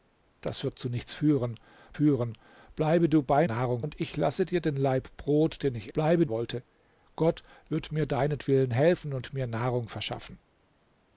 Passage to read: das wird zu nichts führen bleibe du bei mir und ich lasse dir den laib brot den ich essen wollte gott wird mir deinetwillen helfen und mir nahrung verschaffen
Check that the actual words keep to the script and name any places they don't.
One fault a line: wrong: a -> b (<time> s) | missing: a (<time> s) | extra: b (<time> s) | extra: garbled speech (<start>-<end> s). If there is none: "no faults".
extra: führen (1.9 s)
wrong: mir -> nahrung (3.4 s)
wrong: essen -> bleibe (5.9 s)